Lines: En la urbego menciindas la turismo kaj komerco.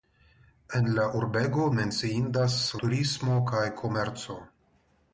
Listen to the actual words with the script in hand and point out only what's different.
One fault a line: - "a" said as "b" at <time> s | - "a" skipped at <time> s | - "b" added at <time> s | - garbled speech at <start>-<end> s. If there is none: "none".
- "la" skipped at 2.6 s